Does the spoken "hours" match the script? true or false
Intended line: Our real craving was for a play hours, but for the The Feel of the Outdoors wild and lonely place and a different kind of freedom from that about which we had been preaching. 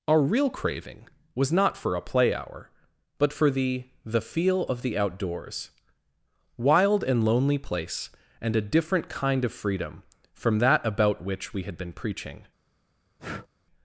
false